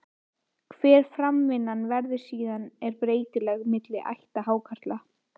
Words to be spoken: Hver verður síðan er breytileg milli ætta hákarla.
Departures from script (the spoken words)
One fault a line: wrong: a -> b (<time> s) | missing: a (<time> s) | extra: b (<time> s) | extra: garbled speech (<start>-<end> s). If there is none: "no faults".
extra: framvindan (1.2 s)